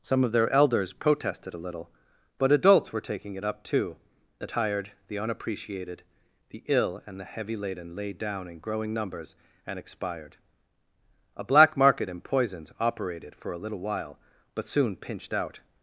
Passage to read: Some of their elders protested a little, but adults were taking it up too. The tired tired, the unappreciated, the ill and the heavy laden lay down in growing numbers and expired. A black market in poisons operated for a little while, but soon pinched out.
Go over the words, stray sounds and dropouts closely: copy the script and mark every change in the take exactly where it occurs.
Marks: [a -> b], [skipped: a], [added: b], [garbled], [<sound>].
Some of their elders protested a little, but adults were taking it up too. The tired [skipped: tired,] the unappreciated, the ill and the heavy laden lay down in growing numbers and expired. A black market in poisons operated for a little while, but soon pinched out.